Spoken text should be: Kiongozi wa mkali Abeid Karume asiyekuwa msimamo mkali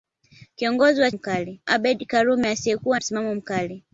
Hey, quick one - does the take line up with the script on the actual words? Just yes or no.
yes